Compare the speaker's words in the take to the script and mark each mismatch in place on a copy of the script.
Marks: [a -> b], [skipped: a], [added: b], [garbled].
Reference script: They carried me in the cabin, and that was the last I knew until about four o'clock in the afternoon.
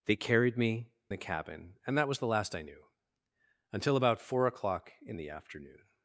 They carried me [skipped: in] the cabin, and that was the last I knew until about four o'clock in the afternoon.